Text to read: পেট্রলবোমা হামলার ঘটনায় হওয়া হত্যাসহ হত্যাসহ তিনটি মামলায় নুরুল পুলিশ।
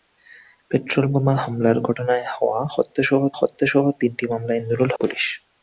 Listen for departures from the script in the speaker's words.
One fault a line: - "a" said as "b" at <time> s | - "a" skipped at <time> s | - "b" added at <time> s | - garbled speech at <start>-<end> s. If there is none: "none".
none